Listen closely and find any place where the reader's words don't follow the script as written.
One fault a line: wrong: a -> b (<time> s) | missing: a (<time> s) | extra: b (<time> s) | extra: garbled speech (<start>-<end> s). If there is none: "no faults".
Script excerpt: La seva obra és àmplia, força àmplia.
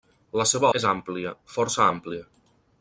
missing: obra (0.7 s)